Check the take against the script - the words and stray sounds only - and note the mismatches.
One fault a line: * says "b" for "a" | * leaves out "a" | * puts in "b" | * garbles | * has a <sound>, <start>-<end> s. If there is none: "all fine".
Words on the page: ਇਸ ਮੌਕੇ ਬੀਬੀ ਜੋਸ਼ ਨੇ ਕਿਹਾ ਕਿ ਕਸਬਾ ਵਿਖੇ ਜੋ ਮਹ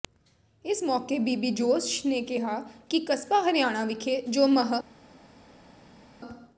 * puts in "ਹਰਿਆਣਾ"